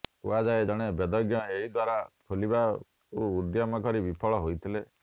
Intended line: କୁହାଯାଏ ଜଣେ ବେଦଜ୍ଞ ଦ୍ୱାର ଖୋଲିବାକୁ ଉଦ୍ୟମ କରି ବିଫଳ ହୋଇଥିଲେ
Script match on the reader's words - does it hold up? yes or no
no